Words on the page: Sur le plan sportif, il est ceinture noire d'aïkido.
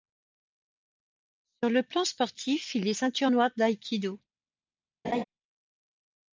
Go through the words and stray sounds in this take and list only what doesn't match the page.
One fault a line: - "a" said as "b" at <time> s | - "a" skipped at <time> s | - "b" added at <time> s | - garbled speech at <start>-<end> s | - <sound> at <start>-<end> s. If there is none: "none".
- laugh at 5.0-5.2 s